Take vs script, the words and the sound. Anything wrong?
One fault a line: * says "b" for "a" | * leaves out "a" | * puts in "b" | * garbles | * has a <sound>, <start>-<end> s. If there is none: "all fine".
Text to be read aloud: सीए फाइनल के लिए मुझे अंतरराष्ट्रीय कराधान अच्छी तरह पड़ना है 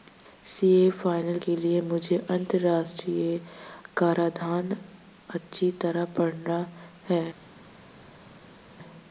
all fine